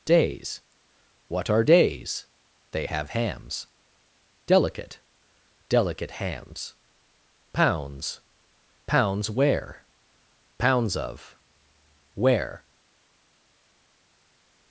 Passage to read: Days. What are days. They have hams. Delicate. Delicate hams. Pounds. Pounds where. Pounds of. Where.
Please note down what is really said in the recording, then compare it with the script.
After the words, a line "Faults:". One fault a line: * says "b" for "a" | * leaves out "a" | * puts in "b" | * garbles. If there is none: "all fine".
Days. What are days. They have hams. Delicate. Delicate hams. Pounds. Pounds where. Pounds of. Where.
Faults:
all fine